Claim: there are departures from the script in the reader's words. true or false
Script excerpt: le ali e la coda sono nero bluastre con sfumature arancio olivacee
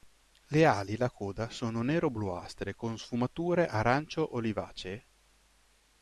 false